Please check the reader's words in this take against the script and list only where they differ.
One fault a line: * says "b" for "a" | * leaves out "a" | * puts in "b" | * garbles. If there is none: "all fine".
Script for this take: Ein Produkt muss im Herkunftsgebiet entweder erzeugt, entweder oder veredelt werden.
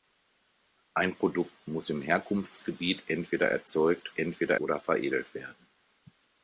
all fine